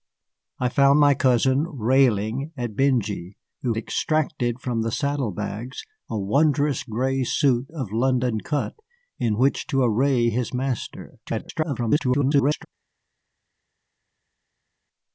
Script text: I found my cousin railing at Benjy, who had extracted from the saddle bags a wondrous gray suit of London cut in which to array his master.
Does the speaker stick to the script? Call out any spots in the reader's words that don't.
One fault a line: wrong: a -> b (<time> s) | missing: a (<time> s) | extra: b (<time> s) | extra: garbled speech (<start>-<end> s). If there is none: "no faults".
missing: had (3.8 s)
extra: garbled speech (11.3-12.7 s)